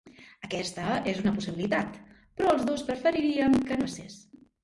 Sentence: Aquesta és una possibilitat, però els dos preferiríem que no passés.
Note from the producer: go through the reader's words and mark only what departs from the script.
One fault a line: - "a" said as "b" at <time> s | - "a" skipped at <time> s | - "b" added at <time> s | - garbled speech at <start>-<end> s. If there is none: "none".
- "no" skipped at 3.8 s